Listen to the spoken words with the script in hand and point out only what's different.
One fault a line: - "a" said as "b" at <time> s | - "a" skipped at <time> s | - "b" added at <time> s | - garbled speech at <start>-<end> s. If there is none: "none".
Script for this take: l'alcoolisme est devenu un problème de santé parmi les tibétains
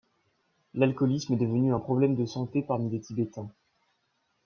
none